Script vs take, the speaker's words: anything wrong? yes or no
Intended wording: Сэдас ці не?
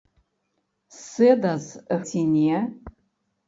no